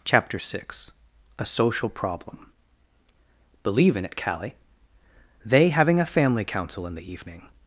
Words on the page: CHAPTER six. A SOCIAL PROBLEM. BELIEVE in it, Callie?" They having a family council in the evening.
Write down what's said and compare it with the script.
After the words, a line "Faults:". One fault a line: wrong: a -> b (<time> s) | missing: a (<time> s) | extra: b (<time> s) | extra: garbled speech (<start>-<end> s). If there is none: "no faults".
CHAPTER six. A SOCIAL PROBLEM. BELIEVE in it, Callie?" They having a family council in the evening.
Faults:
no faults